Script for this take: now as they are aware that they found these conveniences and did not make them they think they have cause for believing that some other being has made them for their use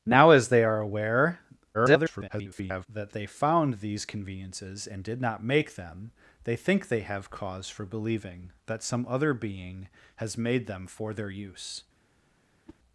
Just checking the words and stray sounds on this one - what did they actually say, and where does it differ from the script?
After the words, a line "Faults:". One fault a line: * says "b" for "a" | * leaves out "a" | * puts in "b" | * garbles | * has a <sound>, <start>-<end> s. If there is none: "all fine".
now as they are aware [garbled] that they found these conveniences and did not make them they think they have cause for believing that some other being has made them for their use
Faults:
* garbles
* has a whoosh, 12.6-12.8 s